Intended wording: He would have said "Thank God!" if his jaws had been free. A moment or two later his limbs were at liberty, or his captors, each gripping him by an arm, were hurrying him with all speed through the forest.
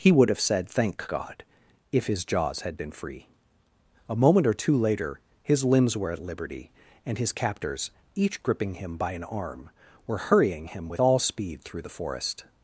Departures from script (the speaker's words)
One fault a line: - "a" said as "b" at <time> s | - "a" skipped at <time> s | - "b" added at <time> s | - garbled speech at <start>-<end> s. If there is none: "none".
- "or" said as "and" at 7.0 s